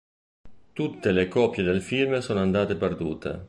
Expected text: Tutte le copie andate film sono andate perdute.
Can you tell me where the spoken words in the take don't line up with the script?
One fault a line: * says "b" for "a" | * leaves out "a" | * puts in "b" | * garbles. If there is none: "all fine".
* says "del" for "andate"